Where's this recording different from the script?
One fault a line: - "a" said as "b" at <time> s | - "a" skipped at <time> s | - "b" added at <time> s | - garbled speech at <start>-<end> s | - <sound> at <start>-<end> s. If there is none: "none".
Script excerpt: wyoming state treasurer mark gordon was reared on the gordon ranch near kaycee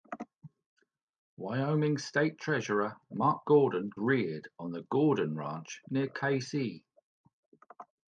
- "was" skipped at 3.9 s